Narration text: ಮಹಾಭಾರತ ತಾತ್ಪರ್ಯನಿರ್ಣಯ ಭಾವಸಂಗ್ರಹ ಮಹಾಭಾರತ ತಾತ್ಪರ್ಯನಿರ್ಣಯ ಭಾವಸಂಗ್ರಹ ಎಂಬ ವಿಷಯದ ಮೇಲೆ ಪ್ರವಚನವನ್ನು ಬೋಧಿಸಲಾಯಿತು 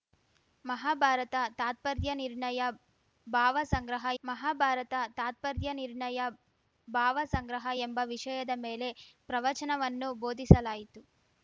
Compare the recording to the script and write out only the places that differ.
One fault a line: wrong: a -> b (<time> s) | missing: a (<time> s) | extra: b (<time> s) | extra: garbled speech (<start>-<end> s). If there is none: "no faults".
no faults